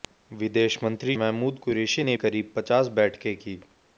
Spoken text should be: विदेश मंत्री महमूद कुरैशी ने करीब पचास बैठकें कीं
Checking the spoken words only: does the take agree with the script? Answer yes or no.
yes